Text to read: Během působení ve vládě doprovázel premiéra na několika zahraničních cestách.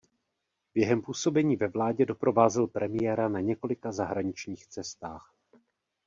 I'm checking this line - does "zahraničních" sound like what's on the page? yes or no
yes